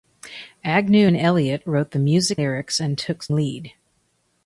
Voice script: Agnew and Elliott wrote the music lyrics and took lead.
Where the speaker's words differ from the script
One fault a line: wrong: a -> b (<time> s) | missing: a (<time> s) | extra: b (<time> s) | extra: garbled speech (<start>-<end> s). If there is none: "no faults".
no faults